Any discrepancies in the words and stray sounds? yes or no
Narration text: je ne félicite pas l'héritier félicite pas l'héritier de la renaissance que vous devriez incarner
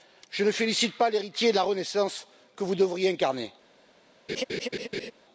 yes